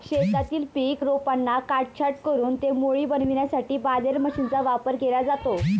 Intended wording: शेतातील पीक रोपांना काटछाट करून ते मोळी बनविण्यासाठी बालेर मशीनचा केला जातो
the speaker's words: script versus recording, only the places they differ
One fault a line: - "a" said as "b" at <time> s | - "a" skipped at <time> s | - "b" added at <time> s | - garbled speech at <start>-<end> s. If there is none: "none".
- "वापर" added at 4.6 s